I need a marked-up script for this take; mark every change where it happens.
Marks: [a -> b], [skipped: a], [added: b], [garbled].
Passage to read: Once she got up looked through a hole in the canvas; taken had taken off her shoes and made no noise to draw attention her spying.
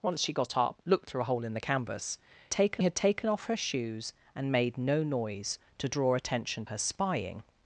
Once she got up looked through a hole in the canvas; taken had taken off her shoes and made no noise to draw attention her spying.